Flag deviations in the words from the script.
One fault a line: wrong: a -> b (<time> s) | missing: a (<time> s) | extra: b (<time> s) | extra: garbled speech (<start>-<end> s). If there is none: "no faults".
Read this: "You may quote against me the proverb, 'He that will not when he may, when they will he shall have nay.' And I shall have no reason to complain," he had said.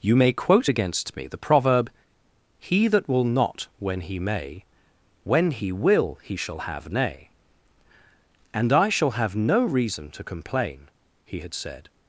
wrong: they -> he (5.5 s)